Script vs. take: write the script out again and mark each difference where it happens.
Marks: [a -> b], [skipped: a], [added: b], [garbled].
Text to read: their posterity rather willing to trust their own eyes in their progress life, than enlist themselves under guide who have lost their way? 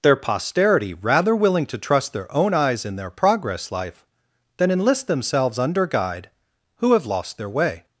their posterity rather willing to trust their own eyes in their progress life, than enlist themselves under guide who have lost their way?